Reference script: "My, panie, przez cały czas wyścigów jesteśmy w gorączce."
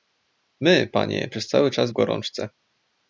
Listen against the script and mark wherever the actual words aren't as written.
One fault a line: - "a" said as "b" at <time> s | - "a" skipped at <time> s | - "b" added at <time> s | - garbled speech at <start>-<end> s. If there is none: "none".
- "wyścigów jesteśmy" skipped at 1.9 s